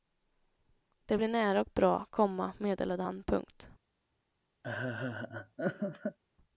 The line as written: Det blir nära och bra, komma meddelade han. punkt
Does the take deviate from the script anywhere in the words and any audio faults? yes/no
yes